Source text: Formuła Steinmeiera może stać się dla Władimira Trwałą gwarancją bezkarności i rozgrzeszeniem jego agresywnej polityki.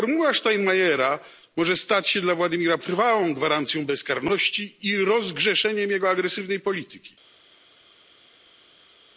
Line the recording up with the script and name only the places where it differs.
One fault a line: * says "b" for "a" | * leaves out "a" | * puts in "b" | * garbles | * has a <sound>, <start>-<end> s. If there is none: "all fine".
all fine